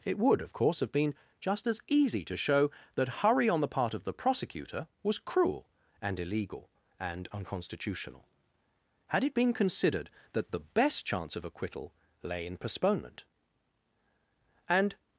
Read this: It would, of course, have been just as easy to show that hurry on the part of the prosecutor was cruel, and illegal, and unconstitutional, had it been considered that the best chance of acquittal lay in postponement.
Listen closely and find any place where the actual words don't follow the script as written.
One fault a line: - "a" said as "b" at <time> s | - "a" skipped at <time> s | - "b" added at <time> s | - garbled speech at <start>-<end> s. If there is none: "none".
- "And" added at 14.7 s